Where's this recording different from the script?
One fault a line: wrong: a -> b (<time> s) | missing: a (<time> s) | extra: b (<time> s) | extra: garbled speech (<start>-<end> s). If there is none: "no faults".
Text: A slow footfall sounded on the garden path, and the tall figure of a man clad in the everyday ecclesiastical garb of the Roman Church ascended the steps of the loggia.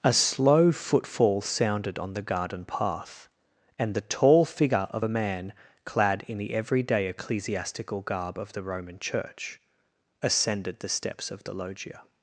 no faults